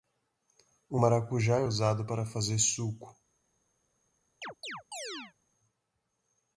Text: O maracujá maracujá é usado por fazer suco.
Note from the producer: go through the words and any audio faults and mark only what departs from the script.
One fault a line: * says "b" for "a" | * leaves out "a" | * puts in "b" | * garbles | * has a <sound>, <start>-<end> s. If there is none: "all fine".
* leaves out "maracujá"
* says "para" for "por"
* has a chirp, 4.4-5.3 s